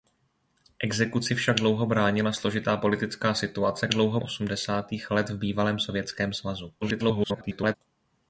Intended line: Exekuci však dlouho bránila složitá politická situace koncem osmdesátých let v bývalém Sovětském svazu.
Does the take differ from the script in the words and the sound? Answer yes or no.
yes